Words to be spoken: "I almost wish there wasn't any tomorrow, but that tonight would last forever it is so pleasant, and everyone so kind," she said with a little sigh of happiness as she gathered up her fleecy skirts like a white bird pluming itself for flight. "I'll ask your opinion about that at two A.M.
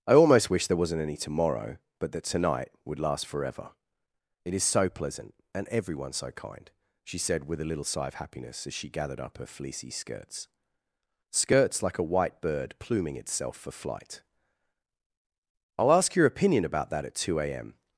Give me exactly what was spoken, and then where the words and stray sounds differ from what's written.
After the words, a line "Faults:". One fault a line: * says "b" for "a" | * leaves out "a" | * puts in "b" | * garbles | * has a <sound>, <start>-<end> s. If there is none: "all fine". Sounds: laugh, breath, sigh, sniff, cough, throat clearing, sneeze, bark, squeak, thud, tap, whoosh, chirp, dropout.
"I almost wish there wasn't any tomorrow, but that tonight would last forever it is so pleasant, and everyone so kind," she said with a little sigh of happiness as she gathered up her fleecy skirts skirts like a white bird pluming itself for flight. "I'll ask your opinion about that at two A.M.
Faults:
* puts in "skirts"